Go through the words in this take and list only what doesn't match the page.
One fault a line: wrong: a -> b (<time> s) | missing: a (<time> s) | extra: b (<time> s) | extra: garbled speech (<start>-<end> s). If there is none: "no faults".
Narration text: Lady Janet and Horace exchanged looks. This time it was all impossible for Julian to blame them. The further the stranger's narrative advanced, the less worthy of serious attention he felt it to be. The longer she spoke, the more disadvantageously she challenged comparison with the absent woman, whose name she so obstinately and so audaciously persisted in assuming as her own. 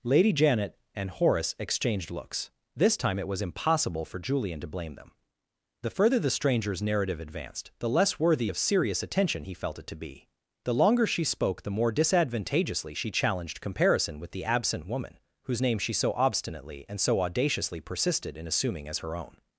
missing: all (3.4 s)